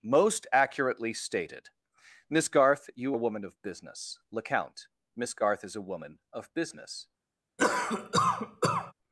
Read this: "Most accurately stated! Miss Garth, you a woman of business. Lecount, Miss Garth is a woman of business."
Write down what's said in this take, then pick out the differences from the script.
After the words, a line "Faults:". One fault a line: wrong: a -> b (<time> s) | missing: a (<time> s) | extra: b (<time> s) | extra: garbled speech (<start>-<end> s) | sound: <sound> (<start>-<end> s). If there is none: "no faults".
"Most accurately stated! Miss Garth, you a woman of business. Lecount, Miss Garth is a woman of business."
Faults:
sound: cough (7.6-8.9 s)